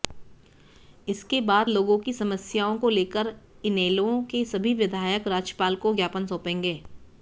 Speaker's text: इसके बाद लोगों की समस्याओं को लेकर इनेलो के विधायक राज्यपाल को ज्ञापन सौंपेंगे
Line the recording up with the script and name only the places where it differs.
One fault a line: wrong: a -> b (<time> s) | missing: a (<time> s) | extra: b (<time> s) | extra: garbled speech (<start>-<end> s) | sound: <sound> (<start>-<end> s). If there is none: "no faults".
extra: सभी (4.4 s)